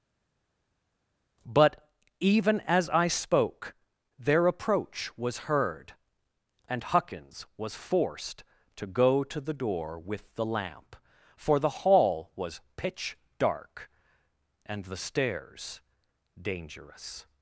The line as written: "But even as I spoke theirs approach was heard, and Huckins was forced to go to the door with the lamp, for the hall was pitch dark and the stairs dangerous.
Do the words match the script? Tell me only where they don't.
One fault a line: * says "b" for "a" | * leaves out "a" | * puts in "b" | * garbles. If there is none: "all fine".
* says "their" for "theirs"